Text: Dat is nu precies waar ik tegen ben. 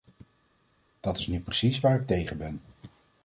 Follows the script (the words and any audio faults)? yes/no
yes